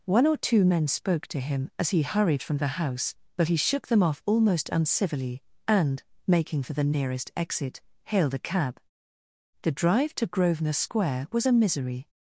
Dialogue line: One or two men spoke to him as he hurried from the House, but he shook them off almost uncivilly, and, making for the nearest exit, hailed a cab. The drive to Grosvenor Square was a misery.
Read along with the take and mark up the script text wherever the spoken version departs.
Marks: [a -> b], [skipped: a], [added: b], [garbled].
One or two men spoke to him as he hurried from the House, but he shook them off almost uncivilly, and, making for the nearest exit, hailed a cab. The drive to Grosvenor Square was a misery.